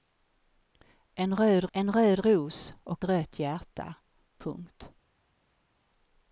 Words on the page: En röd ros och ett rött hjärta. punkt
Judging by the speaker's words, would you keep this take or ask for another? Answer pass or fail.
fail